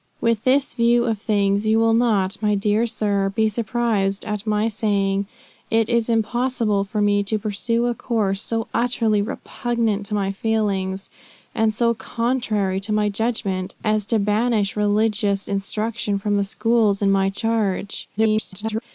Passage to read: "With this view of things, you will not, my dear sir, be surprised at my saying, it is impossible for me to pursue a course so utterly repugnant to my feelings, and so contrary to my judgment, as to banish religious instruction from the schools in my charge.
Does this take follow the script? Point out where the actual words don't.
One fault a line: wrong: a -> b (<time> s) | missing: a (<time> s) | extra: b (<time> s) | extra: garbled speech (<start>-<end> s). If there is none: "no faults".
extra: garbled speech (18.2-18.8 s)